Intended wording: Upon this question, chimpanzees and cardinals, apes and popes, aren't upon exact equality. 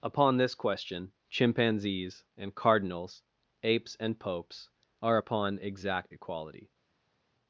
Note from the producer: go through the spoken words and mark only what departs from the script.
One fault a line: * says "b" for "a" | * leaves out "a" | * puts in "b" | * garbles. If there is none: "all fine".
* says "are" for "aren't"